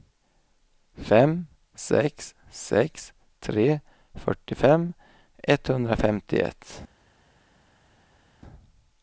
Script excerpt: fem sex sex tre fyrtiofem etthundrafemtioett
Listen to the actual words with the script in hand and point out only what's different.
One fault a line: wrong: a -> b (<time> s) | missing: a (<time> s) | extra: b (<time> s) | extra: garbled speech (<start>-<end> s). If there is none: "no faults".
no faults